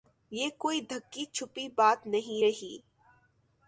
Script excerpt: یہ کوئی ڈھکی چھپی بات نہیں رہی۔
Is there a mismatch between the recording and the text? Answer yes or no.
no